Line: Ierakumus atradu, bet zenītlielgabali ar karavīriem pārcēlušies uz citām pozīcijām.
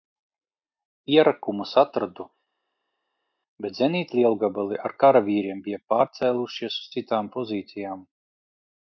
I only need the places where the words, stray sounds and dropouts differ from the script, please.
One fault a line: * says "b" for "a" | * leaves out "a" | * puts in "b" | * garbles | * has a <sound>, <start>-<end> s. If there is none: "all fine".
* puts in "bija"